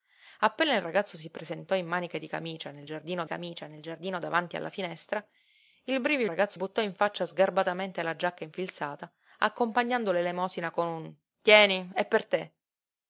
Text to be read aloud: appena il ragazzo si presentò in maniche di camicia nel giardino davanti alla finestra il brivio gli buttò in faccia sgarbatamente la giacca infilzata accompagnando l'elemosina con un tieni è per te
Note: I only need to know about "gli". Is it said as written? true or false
false